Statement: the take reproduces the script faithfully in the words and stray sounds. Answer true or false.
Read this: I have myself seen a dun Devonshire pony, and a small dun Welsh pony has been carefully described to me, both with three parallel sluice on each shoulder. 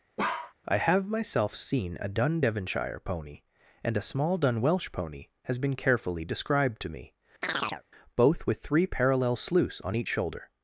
false